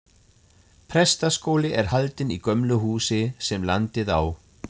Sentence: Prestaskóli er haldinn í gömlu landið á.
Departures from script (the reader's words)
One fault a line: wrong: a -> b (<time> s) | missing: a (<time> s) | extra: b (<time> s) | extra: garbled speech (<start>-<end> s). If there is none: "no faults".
extra: húsi sem (2.8 s)